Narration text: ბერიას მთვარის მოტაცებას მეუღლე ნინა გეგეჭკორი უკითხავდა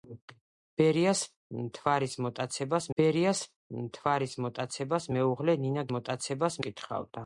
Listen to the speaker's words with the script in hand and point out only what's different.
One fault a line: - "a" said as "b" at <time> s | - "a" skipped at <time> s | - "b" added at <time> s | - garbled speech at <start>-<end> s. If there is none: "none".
- "ბერიას მთვარის მოტაცებას" added at 3.0 s
- "გეგეჭკორი" said as "მოტაცებას" at 6.0 s